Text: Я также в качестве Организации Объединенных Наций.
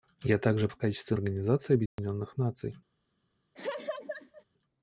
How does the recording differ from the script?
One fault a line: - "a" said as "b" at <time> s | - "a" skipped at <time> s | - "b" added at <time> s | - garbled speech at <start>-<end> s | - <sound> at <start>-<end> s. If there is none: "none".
- dropout at 1.9-2.0 s
- laugh at 3.5-4.4 s